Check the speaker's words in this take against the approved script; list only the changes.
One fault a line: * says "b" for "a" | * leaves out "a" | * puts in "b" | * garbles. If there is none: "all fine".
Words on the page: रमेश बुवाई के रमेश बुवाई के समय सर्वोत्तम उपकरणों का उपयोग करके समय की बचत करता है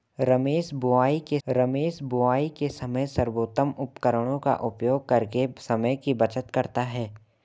all fine